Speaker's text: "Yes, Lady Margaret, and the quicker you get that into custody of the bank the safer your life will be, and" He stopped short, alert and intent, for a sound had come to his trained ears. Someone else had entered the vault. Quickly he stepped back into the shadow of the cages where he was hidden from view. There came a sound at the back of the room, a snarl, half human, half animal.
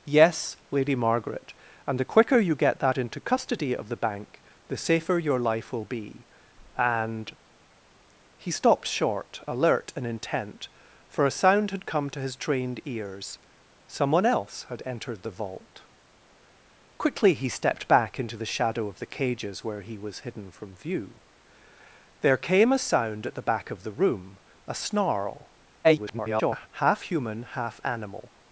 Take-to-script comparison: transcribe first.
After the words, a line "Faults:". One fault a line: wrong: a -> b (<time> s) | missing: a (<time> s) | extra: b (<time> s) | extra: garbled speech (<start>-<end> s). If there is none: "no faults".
"Yes, Lady Margaret, and the quicker you get that into custody of the bank the safer your life will be, and" He stopped short, alert and intent, for a sound had come to his trained ears. Someone else had entered the vault. Quickly he stepped back into the shadow of the cages where he was hidden from view. There came a sound at the back of the room, a snarl, [garbled] half human, half animal.
Faults:
extra: garbled speech (25.8-26.7 s)